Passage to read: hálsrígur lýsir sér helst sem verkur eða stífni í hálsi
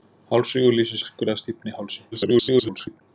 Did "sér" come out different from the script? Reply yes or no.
yes